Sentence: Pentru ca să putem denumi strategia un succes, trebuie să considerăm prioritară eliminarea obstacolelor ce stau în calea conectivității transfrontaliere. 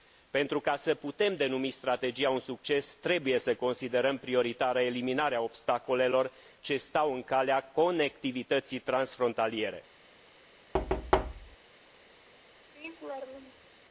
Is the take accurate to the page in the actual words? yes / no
yes